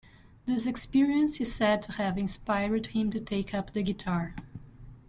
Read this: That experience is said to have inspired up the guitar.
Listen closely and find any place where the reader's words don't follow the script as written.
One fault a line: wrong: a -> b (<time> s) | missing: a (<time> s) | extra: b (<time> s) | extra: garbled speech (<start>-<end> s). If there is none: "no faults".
wrong: That -> This (0.5 s)
extra: him to take (2.9 s)